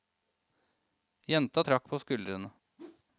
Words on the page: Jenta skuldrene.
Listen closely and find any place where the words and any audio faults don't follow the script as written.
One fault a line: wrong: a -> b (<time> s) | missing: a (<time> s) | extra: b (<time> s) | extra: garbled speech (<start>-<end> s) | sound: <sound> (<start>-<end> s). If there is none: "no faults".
extra: trakk på (1.6 s)
sound: whoosh (2.8-3.0 s)